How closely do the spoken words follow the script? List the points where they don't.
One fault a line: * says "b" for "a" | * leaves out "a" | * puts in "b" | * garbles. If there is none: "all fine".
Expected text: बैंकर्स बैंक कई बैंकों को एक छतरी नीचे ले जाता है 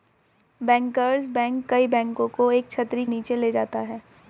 all fine